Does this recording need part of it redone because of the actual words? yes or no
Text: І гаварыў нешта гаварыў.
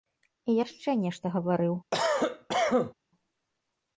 yes